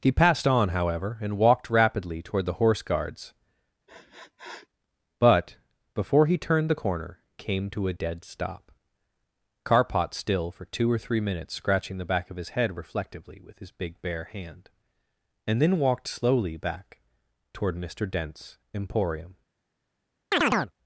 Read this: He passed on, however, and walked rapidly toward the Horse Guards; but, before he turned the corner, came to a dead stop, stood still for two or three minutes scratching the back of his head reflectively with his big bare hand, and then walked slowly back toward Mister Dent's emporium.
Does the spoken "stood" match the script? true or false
false